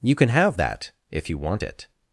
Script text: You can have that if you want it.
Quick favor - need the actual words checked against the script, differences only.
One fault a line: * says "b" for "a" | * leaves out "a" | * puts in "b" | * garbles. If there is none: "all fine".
all fine